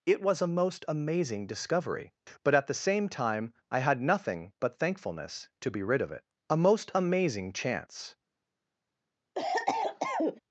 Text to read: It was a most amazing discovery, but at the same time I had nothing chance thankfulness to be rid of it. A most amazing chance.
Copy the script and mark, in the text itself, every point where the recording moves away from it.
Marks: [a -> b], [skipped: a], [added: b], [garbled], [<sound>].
It was a most amazing discovery, but at the same time I had nothing [chance -> but] thankfulness to be rid of it. A most amazing chance. [cough]